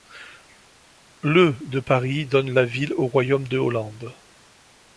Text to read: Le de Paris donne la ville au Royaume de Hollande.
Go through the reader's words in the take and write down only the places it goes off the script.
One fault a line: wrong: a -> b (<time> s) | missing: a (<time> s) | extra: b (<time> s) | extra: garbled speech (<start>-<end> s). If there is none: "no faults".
no faults